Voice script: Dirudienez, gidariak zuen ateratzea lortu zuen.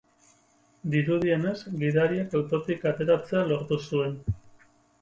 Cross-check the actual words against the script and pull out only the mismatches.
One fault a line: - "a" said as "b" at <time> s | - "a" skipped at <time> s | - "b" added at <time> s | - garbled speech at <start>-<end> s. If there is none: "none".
- "zuen" said as "autotik" at 2.4 s